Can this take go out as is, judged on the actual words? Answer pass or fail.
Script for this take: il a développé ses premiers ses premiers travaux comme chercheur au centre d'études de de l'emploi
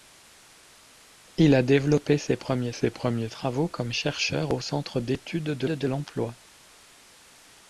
pass